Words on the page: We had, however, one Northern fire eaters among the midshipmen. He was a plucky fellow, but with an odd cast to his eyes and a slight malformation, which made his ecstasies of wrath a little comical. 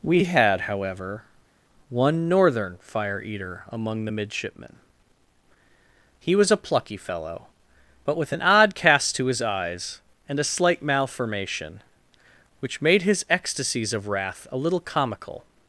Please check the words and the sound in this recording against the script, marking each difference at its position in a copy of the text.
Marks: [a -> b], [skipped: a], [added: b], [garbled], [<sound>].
We had, however, one Northern fire [eaters -> eater] among the midshipmen. He was a plucky fellow, but with an odd cast to his eyes and a slight malformation, which made his ecstasies of wrath a little comical.